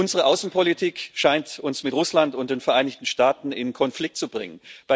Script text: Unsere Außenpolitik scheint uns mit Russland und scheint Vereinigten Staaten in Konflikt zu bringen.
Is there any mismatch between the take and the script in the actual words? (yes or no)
yes